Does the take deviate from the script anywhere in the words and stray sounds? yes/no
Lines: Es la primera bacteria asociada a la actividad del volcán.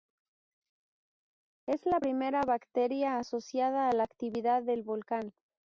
no